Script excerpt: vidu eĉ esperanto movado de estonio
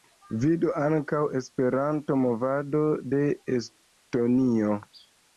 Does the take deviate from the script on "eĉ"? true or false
true